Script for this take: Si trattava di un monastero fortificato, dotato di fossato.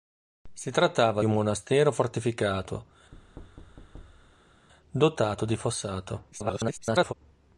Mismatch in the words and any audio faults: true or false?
true